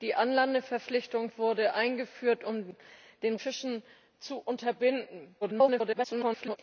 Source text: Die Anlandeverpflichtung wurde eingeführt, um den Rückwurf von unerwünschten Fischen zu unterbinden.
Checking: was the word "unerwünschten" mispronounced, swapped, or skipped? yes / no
yes